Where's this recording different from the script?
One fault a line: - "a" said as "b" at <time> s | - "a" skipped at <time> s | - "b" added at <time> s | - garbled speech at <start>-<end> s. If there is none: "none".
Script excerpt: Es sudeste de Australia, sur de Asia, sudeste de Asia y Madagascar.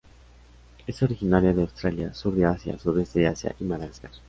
- "sudeste" said as "originaria" at 1.0 s